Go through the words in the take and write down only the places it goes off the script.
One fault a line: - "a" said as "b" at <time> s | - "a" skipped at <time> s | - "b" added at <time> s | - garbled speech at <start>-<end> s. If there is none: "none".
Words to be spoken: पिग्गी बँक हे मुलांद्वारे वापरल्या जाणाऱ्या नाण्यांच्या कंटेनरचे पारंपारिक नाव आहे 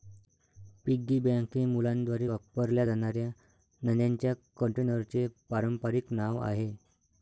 none